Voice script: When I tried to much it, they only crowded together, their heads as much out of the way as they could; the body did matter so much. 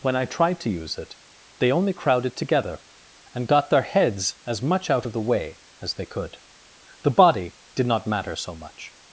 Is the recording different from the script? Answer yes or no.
yes